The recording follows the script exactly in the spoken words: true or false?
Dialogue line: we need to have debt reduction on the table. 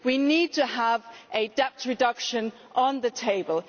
true